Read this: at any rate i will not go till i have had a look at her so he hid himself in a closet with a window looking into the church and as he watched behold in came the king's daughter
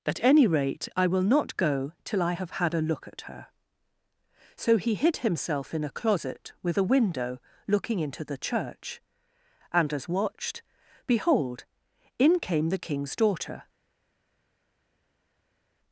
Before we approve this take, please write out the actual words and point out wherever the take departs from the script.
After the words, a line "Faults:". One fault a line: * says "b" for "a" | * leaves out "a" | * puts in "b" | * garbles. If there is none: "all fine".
at any rate i will not go till i have had a look at her so he hid himself in a closet with a window looking into the church and as watched behold in came the king's daughter
Faults:
* leaves out "he"